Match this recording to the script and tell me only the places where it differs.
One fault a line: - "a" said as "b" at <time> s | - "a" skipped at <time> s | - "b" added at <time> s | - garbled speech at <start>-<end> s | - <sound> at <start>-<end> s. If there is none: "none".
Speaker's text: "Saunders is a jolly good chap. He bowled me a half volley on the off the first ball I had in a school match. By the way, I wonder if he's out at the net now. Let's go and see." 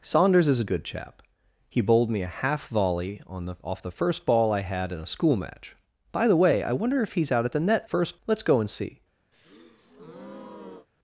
- "jolly" skipped at 0.7 s
- "now" said as "first" at 7.8 s
- breath at 9.3-10.9 s